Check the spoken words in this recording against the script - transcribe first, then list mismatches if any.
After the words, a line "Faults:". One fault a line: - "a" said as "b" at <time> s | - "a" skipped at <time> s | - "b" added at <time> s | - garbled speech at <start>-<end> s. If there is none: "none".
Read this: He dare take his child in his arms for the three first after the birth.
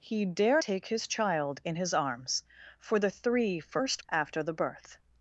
He dare take his child in his arms for the three first after the birth.
Faults:
none